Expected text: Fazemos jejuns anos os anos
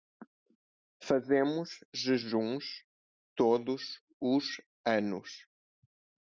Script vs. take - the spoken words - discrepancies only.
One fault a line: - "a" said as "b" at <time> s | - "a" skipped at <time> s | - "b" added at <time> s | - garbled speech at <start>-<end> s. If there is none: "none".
- "anos" said as "todos" at 3.4 s